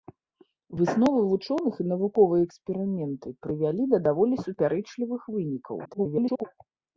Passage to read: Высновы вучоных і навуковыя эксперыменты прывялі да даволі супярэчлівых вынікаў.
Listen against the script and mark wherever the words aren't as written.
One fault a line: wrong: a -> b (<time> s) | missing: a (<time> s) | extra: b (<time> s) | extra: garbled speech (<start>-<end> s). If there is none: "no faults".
extra: garbled speech (5.8-6.4 s)